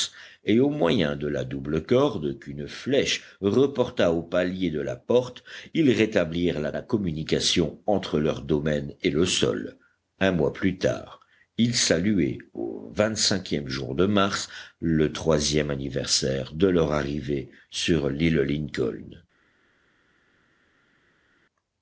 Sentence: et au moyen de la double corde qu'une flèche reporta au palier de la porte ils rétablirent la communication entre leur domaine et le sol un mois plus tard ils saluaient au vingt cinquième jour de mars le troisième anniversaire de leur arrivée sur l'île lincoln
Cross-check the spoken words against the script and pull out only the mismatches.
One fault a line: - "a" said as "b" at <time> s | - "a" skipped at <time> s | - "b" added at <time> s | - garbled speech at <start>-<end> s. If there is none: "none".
- "la" added at 6.7 s